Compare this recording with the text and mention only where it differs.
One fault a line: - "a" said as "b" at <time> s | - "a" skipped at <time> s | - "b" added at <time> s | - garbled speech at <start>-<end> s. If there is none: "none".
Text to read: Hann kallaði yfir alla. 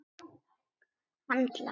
- "kallaði yfir" skipped at 1.4 s